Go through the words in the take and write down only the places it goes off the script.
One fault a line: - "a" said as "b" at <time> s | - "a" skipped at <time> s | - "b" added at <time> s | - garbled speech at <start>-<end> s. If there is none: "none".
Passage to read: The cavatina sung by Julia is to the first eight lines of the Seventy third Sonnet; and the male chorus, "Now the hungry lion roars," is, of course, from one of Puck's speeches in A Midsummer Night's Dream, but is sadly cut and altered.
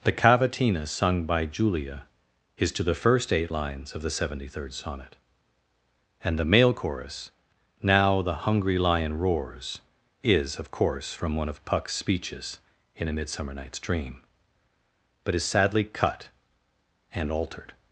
none